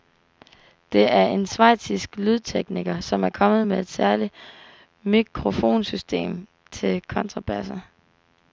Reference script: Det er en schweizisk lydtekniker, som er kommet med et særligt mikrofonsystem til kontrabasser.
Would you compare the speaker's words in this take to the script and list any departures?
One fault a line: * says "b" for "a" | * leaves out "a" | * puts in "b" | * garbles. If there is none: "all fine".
all fine